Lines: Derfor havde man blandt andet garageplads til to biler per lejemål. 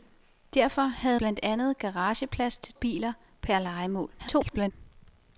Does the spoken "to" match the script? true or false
false